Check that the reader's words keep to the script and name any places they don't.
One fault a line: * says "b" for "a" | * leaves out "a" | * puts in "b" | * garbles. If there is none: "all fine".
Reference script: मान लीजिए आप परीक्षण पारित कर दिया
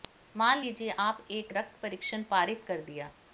* puts in "एक रक्त"